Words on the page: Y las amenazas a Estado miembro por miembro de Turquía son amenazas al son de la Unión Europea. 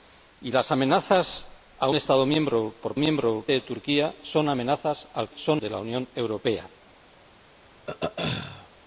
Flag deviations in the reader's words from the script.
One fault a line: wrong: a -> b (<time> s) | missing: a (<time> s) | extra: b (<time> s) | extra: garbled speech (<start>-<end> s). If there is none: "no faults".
no faults